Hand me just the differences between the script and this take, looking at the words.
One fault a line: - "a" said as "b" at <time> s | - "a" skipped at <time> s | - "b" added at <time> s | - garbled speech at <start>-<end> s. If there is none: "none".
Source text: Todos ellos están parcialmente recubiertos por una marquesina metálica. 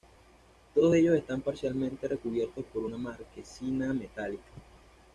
none